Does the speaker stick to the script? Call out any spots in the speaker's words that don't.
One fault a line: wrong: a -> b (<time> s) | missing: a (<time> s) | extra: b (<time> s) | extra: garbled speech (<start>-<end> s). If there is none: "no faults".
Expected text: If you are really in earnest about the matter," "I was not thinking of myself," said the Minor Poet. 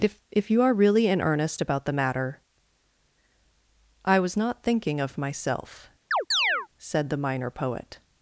extra: if (0.3 s)